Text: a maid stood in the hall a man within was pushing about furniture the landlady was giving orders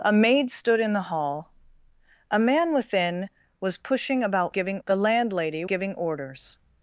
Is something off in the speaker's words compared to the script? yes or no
yes